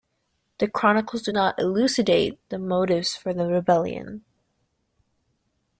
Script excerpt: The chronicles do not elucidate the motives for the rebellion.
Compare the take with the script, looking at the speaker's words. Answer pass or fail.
pass